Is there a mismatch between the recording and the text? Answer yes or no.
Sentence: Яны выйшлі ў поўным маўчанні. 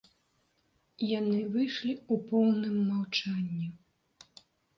no